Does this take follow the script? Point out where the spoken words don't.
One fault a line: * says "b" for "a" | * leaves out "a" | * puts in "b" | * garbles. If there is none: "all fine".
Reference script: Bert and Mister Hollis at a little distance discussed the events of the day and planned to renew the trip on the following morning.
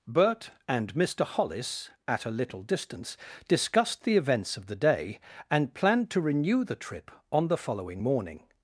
all fine